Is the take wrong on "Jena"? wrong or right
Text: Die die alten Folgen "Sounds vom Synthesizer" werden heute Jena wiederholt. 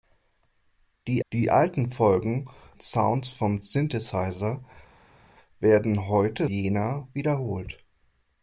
right